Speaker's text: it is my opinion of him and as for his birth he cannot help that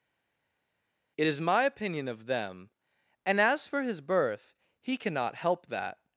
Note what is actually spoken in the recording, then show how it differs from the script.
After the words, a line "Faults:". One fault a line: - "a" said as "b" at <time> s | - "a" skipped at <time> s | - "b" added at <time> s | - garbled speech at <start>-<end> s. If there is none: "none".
it is my opinion of them and as for his birth he cannot help that
Faults:
- "him" said as "them" at 2.2 s